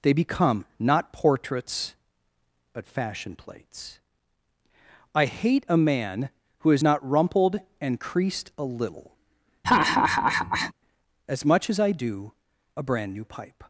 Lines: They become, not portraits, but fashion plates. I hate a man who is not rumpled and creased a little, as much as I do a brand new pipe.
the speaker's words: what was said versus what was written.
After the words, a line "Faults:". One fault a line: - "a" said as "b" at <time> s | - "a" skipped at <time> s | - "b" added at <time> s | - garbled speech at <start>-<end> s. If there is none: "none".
They become, not portraits, but fashion plates. I hate a man who is not rumpled and creased a little, as much as I do a brand new pipe.
Faults:
none